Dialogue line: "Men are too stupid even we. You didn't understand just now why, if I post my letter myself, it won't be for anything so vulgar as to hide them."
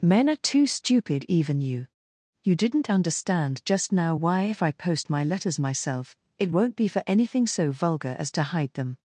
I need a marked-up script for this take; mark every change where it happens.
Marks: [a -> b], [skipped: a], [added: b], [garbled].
"Men are too stupid even [we. -> you] You didn't understand just now why, if I post my [letter -> letters] myself, it won't be for anything so vulgar as to hide them."